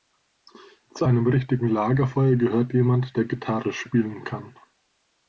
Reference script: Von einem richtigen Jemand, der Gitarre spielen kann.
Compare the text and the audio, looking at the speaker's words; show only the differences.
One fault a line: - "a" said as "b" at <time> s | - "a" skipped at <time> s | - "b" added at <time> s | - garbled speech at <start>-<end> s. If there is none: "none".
- "Von" said as "Zu" at 0.9 s
- "Lagerfeuer gehört" added at 1.7 s